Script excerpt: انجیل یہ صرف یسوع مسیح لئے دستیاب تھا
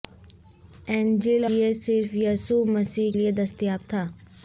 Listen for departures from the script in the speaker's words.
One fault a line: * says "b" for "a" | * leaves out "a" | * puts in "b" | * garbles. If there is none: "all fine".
all fine